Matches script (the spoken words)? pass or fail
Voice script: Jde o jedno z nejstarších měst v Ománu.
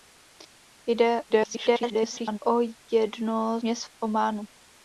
fail